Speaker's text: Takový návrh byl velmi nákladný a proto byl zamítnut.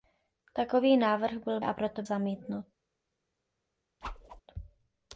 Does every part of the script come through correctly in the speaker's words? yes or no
no